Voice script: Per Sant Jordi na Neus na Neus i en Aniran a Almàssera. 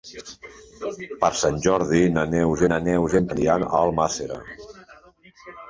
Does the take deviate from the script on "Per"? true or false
false